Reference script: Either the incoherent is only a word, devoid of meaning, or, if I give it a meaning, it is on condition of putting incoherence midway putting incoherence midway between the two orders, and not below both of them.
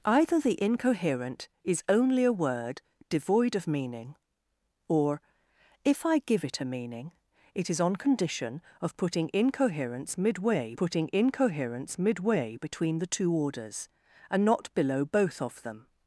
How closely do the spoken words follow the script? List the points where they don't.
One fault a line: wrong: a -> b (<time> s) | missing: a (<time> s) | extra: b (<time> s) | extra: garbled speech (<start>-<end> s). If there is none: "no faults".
no faults